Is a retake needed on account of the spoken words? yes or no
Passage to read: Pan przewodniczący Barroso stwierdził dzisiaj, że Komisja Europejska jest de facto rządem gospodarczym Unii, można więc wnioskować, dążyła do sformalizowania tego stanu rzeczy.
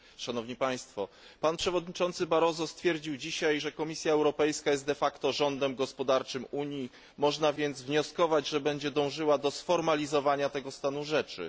yes